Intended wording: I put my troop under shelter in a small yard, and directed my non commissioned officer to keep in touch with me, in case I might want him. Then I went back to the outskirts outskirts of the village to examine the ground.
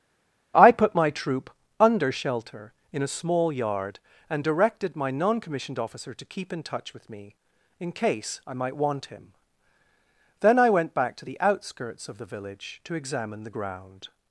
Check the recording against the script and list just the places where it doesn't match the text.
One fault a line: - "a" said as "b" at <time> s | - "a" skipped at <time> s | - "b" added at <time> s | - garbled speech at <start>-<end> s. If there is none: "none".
- "outskirts" skipped at 12.1 s